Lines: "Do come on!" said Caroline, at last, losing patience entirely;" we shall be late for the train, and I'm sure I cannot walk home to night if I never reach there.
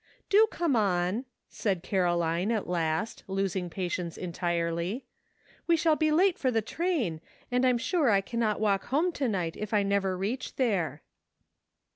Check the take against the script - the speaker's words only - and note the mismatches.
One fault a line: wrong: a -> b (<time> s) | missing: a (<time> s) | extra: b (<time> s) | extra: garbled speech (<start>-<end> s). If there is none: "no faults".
no faults